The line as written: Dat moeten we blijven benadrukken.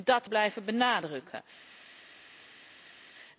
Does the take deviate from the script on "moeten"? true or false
true